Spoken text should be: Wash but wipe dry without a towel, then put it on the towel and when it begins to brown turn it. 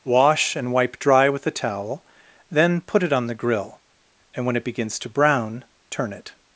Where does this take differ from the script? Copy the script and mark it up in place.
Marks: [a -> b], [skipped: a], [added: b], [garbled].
Wash [but -> and] wipe dry [without -> with] a towel, then put it on the [towel -> grill] and when it begins to brown turn it.